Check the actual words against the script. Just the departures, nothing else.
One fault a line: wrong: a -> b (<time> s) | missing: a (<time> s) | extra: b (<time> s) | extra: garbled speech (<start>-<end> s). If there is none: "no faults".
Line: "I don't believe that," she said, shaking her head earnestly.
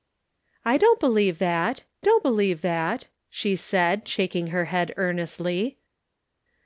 extra: don't believe that (2.0 s)